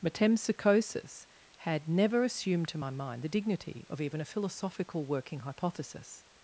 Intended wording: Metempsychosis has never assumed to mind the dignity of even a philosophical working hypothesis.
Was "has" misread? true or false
true